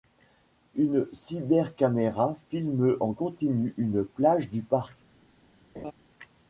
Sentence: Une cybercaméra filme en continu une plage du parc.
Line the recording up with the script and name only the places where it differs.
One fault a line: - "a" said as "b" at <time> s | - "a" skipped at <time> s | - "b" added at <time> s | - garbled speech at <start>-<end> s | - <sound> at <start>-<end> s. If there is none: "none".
- laugh at 5.7-5.9 s